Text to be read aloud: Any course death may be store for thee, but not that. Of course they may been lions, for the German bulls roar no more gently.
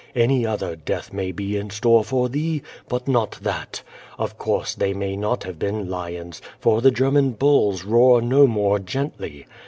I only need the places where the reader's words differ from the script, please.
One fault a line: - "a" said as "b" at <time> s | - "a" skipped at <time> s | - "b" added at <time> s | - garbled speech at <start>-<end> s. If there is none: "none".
- "course" said as "other" at 0.5 s
- "in" added at 1.6 s
- "not have" added at 5.2 s